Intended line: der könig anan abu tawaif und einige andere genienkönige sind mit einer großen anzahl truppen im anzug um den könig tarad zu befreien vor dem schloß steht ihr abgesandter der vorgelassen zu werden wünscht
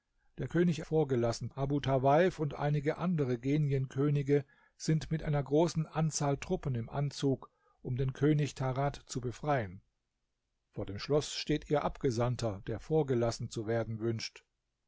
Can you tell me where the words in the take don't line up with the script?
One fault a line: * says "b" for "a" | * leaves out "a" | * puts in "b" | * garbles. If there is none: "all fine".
* says "vorgelassen" for "anan"